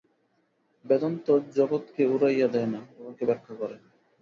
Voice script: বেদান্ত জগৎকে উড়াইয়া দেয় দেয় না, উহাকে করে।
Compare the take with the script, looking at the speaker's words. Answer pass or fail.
fail